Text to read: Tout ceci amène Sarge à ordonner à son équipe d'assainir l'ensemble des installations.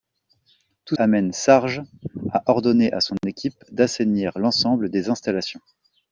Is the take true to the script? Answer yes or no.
no